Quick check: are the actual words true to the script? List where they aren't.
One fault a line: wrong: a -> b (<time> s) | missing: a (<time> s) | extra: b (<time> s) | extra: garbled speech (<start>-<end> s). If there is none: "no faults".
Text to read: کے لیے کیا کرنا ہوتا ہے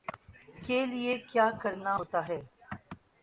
no faults